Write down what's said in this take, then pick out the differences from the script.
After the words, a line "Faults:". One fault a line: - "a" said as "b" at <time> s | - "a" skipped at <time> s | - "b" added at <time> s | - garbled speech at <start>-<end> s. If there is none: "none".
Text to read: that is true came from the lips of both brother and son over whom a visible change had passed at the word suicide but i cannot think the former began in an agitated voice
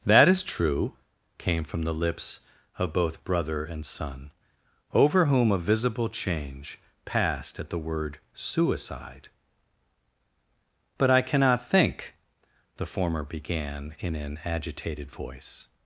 that is true came from the lips of both brother and son over whom a visible change passed at the word suicide but i cannot think the former began in an agitated voice
Faults:
- "had" skipped at 6.8 s